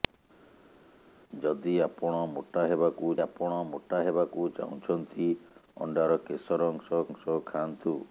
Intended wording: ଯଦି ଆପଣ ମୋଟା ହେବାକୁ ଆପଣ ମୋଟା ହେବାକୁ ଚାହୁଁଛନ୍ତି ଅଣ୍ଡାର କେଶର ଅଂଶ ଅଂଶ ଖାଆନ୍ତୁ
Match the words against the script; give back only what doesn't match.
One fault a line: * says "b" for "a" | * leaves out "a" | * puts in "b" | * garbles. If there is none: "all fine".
all fine